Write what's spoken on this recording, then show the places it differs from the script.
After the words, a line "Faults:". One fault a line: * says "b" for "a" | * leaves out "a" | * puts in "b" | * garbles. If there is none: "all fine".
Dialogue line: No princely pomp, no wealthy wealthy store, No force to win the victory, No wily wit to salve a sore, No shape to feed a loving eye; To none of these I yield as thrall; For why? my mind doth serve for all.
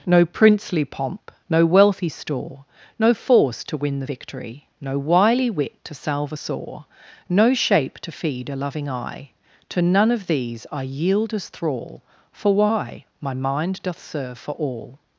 No princely pomp, no wealthy store, No force to win the victory, No wily wit to salve a sore, No shape to feed a loving eye; To none of these I yield as thrall; For why? my mind doth serve for all.
Faults:
* leaves out "wealthy"